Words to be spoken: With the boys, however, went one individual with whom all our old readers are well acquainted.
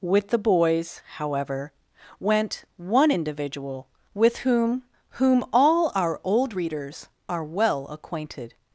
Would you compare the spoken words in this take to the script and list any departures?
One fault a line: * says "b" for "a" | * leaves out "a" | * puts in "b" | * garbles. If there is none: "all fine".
* puts in "whom"